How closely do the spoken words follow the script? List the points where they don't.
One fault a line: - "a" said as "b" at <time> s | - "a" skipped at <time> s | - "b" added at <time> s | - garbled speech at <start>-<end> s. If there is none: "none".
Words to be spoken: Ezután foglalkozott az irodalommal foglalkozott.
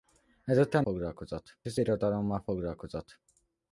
none